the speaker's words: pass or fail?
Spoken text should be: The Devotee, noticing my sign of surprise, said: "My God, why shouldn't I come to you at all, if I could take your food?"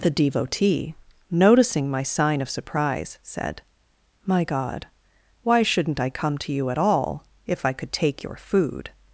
pass